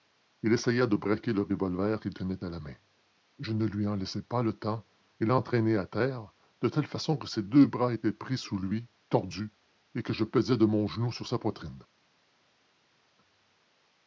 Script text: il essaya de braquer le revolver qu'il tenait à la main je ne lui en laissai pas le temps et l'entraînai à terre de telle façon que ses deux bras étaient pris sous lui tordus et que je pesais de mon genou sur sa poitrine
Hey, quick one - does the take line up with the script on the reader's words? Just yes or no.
yes